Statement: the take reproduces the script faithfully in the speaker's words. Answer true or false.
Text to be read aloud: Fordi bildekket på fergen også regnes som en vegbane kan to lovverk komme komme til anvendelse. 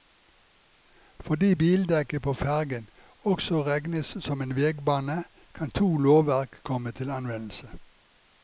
false